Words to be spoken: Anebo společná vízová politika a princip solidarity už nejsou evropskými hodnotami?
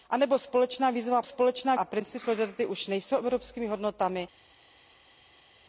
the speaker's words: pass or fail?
fail